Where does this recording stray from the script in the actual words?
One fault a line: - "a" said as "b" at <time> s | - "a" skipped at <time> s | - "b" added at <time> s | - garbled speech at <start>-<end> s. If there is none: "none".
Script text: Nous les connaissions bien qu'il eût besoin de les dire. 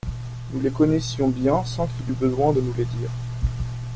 - "sans" added at 1.6 s
- "nous" added at 2.6 s